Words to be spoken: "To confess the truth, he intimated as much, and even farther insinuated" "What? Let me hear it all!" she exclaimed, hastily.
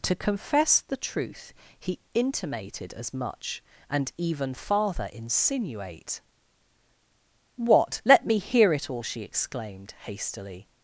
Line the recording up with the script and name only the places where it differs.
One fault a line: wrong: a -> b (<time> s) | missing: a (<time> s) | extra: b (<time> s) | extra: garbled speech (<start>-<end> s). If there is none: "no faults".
wrong: insinuated -> insinuate (5.1 s)